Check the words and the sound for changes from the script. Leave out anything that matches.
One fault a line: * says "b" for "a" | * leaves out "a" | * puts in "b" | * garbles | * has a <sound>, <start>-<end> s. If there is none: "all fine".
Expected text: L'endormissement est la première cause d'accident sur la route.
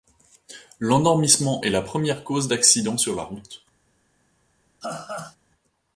* has a laugh, 4.8-5.4 s